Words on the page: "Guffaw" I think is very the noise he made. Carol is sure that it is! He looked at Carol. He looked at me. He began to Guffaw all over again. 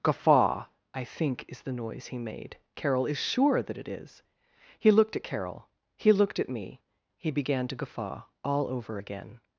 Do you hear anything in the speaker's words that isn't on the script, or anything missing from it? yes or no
yes